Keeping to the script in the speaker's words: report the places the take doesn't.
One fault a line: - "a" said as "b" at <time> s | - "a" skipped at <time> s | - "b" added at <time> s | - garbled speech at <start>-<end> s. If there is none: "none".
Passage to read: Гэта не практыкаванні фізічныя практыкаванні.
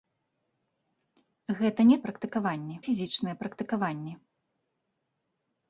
none